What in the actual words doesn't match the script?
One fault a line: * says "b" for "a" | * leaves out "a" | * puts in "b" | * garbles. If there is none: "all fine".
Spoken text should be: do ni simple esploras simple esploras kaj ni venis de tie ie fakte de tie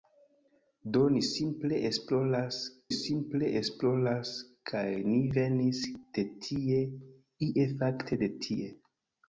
all fine